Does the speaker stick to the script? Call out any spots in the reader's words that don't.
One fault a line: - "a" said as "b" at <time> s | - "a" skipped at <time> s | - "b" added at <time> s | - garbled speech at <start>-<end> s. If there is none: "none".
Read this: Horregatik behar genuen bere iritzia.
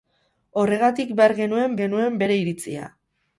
- "genuen" added at 1.8 s